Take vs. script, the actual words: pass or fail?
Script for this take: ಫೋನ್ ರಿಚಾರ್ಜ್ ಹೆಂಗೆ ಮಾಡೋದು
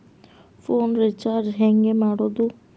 pass